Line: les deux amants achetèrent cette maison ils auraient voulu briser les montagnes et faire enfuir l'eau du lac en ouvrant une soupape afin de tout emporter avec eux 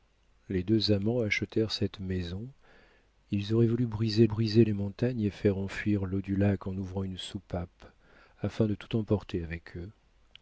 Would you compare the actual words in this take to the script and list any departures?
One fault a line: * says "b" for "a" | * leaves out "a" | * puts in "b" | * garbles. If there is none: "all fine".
* puts in "briser"